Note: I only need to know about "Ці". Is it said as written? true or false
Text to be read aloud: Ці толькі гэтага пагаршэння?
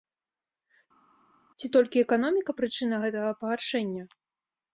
true